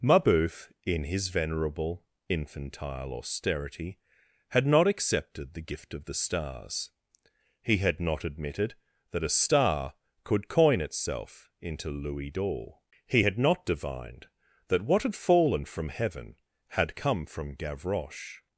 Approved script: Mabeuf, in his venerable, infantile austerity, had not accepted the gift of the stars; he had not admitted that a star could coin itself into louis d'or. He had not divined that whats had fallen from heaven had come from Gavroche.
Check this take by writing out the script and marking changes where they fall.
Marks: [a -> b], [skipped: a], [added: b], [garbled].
Mabeuf, in his venerable, infantile austerity, had not accepted the gift of the stars; he had not admitted that a star could coin itself into louis d'or. He had not divined that [whats -> what] had fallen from heaven had come from Gavroche.